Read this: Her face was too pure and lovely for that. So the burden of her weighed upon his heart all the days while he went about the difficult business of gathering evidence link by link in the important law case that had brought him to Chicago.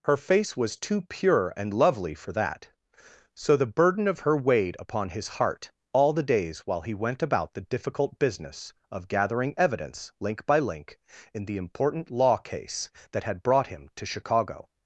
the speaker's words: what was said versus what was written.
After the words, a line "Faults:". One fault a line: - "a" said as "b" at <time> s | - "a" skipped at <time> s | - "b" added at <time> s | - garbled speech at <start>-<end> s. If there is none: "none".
Her face was too pure and lovely for that. So the burden of her weighed upon his heart all the days while he went about the difficult business of gathering evidence link by link in the important law case that had brought him to Chicago.
Faults:
none